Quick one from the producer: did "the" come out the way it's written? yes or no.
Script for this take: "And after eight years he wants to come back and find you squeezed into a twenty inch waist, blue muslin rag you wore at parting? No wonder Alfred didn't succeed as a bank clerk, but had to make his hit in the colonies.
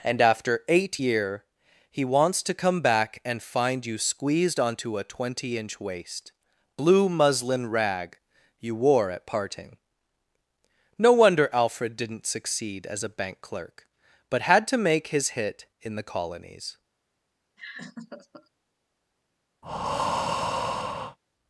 yes